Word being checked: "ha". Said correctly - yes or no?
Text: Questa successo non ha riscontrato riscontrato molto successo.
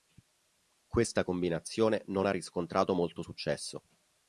yes